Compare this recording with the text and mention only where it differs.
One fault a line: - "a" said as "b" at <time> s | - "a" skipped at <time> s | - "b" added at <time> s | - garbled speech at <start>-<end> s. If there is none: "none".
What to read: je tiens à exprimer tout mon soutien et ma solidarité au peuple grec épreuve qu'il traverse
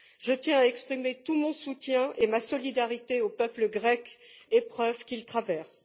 none